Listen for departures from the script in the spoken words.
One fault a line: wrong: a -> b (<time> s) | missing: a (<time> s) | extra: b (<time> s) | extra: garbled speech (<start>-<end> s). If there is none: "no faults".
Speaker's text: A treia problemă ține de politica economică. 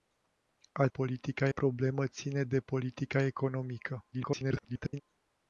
wrong: treia -> politica (0.9 s)
extra: garbled speech (4.1-5.0 s)